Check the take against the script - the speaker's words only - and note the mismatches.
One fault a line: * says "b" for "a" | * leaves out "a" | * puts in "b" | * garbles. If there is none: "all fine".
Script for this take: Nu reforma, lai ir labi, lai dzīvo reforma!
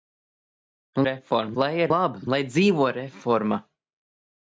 all fine